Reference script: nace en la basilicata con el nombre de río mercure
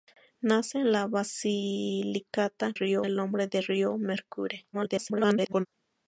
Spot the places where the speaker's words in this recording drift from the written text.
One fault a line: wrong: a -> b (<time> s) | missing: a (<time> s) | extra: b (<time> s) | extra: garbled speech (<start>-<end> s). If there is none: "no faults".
wrong: con -> río (2.7 s)
extra: garbled speech (4.7-5.7 s)